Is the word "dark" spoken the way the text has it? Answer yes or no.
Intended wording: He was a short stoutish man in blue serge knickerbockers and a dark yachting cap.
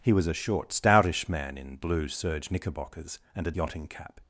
no